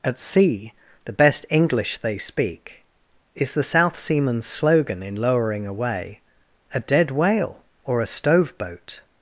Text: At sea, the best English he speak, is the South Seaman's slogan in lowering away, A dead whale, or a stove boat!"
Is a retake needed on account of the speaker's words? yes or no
yes